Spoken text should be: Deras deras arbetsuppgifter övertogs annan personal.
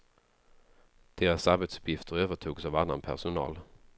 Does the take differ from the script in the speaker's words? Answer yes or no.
yes